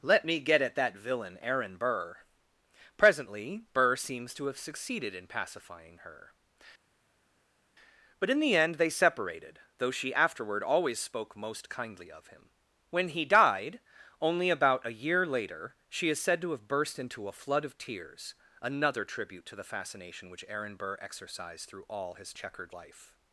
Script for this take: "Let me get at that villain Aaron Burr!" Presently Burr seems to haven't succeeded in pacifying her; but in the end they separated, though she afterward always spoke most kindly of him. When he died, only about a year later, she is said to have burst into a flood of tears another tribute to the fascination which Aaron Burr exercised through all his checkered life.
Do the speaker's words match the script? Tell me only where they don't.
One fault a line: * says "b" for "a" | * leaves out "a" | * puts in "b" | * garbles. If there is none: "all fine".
* says "have" for "haven't"